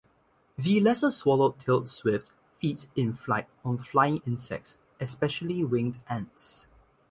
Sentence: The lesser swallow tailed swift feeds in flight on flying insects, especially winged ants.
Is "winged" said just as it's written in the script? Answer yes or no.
yes